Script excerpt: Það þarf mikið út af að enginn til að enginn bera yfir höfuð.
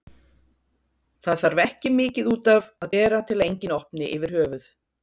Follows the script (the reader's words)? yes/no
no